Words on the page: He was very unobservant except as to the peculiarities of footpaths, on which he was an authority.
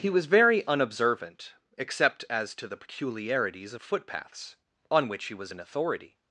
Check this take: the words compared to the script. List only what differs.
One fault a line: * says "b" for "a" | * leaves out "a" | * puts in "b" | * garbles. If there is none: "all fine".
all fine